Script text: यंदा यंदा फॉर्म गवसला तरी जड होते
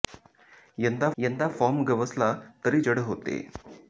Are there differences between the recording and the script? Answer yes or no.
no